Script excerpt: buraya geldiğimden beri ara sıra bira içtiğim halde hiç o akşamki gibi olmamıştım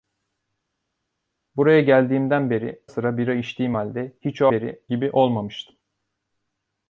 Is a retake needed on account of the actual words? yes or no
yes